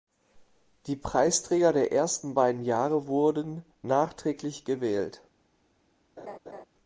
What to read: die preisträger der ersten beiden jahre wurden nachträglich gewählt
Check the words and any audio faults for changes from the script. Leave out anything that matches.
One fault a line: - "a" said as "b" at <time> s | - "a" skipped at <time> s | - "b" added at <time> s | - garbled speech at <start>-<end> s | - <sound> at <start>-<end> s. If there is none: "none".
- laugh at 6.2-6.6 s